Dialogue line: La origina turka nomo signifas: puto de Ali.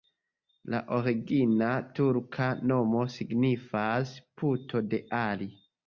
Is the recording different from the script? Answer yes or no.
no